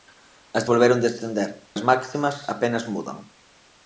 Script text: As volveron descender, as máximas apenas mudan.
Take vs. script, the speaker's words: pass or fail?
pass